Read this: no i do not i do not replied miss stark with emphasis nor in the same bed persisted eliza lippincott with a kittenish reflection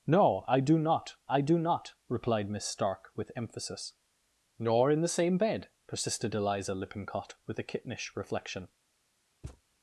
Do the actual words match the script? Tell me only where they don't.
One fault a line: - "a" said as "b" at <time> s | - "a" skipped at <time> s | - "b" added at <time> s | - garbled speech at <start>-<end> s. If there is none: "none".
none